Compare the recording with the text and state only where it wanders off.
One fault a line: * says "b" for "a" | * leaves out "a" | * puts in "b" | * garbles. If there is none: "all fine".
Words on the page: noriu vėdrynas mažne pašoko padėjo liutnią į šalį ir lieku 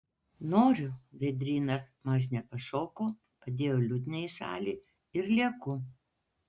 all fine